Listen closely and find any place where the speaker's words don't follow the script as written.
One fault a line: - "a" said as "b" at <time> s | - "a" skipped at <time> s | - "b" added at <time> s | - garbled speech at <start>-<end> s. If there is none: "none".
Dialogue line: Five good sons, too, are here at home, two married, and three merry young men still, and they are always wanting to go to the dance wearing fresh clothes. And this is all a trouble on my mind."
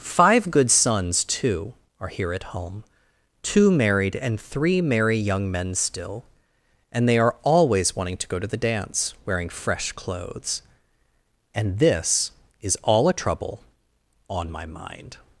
none